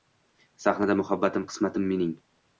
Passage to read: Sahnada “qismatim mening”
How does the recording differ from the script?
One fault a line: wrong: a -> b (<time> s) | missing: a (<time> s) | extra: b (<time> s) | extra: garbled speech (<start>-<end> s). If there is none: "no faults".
extra: muhabbatim (1.0 s)